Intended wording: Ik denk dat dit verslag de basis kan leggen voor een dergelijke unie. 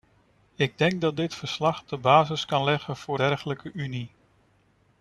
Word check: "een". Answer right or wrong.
wrong